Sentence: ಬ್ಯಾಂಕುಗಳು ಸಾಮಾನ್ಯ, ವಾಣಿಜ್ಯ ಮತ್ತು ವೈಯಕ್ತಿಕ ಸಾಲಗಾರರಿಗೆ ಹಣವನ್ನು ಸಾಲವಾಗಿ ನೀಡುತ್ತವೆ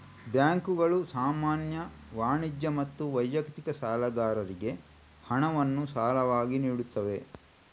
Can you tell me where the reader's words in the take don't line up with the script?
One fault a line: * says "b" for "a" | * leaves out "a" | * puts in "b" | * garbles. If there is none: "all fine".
all fine